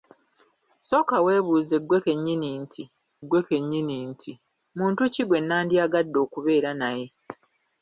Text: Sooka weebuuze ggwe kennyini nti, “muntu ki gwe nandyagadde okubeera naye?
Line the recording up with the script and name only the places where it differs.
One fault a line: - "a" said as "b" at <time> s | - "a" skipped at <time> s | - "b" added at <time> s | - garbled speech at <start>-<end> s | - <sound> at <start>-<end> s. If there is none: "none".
- "ggwe kennyini nti" added at 3.2 s